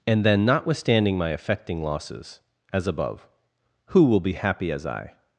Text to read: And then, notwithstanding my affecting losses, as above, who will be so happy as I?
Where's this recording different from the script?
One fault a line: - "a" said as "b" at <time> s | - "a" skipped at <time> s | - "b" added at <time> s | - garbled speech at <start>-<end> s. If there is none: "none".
- "so" skipped at 4.3 s